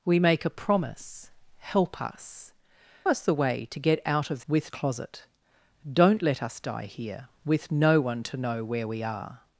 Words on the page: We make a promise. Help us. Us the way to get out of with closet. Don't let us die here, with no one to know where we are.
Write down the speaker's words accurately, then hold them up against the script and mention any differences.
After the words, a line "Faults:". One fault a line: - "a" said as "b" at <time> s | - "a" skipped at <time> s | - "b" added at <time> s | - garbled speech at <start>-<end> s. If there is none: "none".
We make a promise. Help us. Us the way to get out of with closet. Don't let us die here, with no one to know where we are.
Faults:
none